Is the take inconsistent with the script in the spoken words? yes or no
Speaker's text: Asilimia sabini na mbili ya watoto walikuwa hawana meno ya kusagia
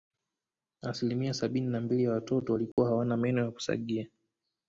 no